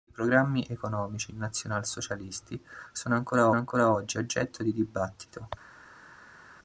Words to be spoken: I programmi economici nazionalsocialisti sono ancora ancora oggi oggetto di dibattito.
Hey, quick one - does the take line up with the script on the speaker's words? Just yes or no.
yes